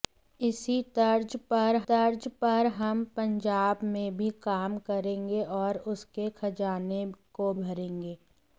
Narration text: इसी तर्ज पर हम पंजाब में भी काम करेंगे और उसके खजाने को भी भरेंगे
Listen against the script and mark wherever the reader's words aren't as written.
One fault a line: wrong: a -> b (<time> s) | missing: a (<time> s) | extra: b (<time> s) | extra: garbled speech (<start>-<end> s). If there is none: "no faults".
extra: तर्ज पर (1.9 s)
missing: भी (7.5 s)